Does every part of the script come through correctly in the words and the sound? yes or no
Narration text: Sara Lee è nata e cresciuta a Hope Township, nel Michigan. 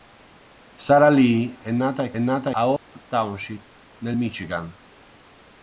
no